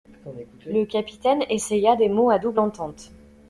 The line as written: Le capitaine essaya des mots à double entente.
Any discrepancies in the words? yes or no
no